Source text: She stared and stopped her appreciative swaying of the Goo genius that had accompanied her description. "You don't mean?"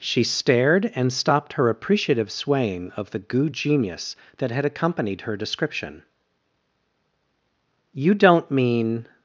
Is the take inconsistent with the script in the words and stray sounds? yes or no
no